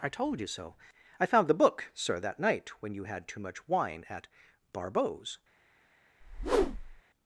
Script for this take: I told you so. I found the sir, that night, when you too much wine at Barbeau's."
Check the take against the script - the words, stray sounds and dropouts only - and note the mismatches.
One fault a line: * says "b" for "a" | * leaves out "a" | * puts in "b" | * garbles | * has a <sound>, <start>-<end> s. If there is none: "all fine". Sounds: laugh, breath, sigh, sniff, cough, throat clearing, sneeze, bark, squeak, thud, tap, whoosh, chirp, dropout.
* puts in "book"
* puts in "had"
* has a whoosh, 6.2-7.0 s